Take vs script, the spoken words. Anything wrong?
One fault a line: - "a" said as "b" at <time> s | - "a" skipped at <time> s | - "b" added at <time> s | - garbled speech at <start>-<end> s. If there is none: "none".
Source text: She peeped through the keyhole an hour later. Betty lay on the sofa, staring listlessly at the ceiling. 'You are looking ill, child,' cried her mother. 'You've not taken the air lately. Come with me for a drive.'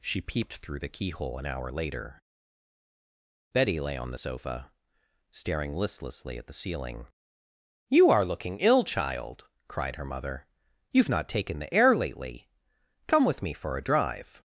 none